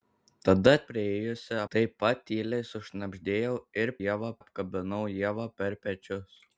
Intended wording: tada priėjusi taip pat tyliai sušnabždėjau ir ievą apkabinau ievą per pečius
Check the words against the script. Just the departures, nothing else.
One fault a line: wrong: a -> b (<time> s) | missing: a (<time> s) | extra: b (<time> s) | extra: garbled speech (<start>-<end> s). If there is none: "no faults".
no faults